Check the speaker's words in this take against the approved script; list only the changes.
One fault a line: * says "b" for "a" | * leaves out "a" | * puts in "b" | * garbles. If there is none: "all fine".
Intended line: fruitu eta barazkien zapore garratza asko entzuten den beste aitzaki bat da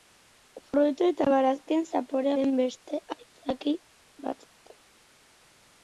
* leaves out "garratza asko entzuten"